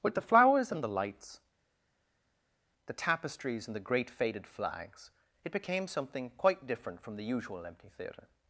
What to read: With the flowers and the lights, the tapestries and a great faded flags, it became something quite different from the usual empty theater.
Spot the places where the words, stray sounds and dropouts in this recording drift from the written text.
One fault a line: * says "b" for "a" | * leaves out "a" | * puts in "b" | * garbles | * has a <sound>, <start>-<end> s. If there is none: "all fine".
* says "the" for "a"